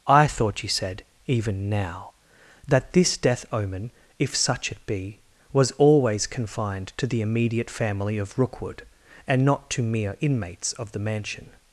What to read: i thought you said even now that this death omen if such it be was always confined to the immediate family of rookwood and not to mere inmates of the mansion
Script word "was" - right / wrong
right